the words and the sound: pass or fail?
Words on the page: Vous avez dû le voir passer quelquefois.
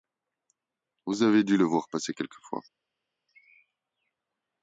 pass